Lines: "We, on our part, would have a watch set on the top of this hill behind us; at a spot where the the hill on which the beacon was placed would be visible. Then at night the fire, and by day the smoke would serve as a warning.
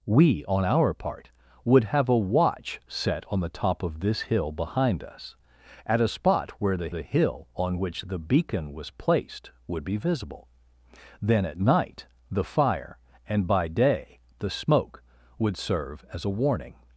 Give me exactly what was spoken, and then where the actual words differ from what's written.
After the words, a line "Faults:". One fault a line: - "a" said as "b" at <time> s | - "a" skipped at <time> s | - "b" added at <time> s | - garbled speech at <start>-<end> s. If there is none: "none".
"We, on our part, would have a watch set on the top of this hill behind us; at a spot where the the hill on which the beacon was placed would be visible. Then at night the fire, and by day the smoke would serve as a warning.
Faults:
none